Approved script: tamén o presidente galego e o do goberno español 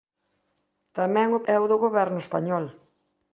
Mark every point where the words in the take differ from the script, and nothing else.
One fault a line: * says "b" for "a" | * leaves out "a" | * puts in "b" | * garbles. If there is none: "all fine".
* leaves out "presidente galego"